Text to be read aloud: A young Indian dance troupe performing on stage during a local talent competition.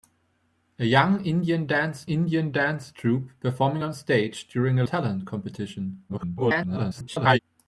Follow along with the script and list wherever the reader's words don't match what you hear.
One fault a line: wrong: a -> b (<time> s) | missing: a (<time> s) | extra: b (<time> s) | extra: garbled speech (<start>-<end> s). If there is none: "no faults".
extra: Indian dance (2.1 s)
missing: local (4.8 s)
extra: garbled speech (6.1-7.4 s)